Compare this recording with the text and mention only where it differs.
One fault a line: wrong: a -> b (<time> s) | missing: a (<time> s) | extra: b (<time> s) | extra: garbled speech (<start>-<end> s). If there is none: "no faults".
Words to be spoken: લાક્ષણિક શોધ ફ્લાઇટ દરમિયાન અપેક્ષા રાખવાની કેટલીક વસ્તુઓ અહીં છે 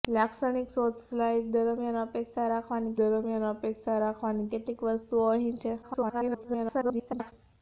extra: દરમિયાન અપેક્ષા રાખવાની (3.0 s)
extra: garbled speech (5.8-7.3 s)